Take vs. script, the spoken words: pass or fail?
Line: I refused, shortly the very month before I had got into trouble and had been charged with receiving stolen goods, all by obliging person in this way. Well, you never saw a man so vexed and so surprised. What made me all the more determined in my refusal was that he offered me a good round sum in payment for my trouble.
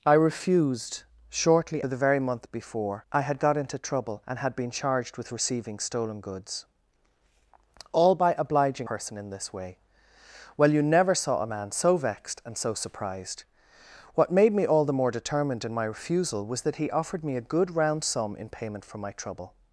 pass